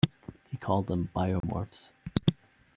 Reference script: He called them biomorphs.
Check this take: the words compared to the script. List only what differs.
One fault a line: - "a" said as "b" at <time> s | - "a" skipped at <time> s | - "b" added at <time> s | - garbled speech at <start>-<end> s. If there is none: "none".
none